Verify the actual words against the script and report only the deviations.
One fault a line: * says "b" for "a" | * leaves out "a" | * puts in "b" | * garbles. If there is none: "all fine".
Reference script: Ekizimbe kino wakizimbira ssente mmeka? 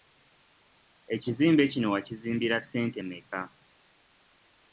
all fine